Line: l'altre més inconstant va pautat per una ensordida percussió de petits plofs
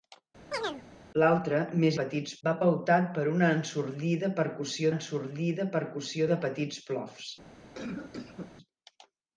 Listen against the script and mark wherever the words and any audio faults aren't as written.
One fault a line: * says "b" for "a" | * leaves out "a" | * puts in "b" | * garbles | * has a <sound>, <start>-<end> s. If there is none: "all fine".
* has a chirp, 0.5-0.8 s
* says "petits" for "inconstant"
* puts in "ensordida percussió"
* has a cough, 7.7-8.5 s